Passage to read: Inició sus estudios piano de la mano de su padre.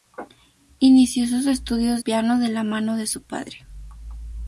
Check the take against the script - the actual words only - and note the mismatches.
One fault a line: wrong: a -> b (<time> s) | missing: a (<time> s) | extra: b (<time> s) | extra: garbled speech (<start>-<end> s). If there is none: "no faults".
no faults